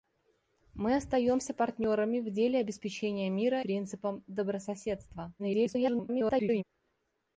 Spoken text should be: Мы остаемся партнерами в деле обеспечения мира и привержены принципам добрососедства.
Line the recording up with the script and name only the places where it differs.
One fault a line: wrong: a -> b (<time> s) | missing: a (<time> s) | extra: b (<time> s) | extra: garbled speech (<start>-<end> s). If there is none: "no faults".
missing: и привержены (3.6 s)
extra: garbled speech (5.4-6.6 s)